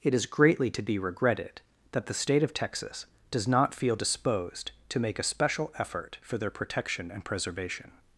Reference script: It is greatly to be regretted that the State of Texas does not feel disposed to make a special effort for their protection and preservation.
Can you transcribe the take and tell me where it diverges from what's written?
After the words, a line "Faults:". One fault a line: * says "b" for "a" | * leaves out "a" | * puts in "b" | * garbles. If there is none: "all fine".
It is greatly to be regretted that the State of Texas does not feel disposed to make a special effort for their protection and preservation.
Faults:
all fine